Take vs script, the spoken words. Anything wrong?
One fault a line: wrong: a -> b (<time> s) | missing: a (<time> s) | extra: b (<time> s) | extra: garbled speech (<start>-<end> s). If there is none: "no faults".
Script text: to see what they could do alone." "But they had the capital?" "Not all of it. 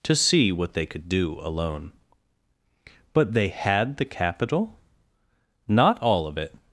no faults